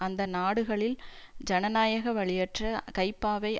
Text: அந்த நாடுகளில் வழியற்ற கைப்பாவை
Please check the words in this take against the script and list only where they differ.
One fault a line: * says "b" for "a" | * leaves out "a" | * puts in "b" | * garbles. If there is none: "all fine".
* puts in "ஜனநாயக"